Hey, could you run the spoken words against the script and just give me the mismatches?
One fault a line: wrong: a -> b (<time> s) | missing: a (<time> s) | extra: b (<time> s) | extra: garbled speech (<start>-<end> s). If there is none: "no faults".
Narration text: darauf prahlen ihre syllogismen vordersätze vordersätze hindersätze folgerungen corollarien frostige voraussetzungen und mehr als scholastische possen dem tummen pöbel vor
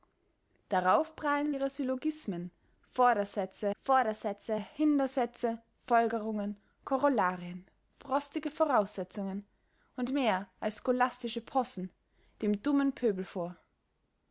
no faults